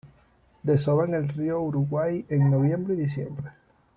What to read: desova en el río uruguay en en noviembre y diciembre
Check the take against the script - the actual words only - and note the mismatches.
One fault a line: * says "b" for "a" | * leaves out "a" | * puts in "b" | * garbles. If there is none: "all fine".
* leaves out "en"